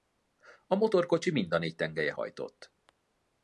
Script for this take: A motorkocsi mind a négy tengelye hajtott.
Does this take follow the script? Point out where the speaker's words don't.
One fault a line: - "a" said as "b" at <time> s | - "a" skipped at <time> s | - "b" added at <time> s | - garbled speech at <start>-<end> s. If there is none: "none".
none